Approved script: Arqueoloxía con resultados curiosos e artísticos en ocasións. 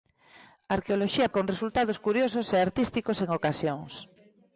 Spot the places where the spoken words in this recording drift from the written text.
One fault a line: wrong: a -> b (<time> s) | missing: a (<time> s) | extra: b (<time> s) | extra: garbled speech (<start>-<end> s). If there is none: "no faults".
no faults